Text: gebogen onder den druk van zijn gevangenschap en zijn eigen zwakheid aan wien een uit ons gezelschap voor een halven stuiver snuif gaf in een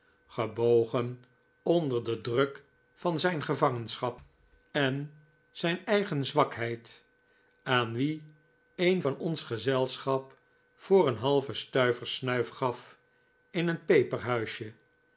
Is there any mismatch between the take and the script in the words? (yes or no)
yes